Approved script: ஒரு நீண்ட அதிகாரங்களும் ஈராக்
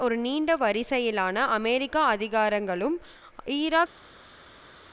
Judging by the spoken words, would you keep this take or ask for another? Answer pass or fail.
fail